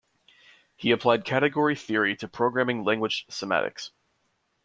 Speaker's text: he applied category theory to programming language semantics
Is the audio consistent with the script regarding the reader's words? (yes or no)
yes